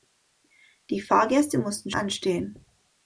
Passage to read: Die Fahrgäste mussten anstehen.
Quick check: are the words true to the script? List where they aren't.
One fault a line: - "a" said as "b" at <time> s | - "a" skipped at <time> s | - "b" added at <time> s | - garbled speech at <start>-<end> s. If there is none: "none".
none